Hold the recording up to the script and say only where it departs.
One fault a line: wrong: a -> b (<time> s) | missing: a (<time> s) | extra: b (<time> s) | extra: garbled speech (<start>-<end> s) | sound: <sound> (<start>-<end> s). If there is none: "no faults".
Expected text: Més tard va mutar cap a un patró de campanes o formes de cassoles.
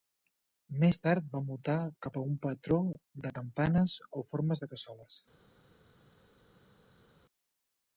no faults